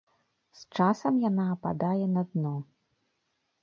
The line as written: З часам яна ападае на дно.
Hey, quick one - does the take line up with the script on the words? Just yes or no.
yes